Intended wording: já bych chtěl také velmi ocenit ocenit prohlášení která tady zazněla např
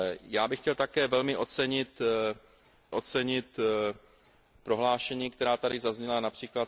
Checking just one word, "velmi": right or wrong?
right